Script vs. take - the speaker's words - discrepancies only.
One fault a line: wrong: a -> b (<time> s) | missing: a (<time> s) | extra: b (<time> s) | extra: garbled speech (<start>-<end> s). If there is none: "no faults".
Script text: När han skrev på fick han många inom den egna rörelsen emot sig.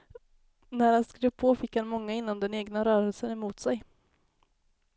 no faults